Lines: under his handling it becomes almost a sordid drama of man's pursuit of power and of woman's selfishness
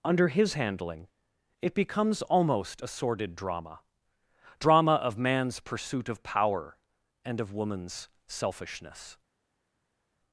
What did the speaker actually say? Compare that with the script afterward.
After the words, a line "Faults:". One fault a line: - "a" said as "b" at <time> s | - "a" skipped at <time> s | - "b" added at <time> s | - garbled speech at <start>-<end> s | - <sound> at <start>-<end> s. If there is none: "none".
under his handling it becomes almost a sordid drama drama of man's pursuit of power and of woman's selfishness
Faults:
- "drama" added at 4.6 s